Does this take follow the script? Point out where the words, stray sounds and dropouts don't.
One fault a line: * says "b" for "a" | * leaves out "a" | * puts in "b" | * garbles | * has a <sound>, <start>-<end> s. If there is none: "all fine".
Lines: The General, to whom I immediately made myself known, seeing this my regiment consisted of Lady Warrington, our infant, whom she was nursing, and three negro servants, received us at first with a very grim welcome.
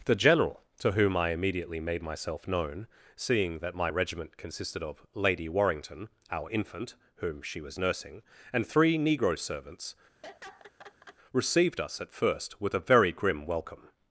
* says "that" for "this"
* has a laugh, 10.2-11.2 s